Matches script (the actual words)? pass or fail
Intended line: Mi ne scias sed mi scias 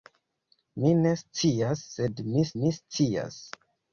fail